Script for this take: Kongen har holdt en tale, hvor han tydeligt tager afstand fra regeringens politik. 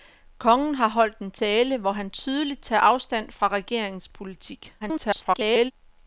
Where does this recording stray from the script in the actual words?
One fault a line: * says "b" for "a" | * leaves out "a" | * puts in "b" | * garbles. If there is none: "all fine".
* garbles